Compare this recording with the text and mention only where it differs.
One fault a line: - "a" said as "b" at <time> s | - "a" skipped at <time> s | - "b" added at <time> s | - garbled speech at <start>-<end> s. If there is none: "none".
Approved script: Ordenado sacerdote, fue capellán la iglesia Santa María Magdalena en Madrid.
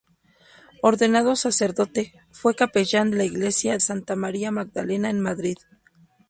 none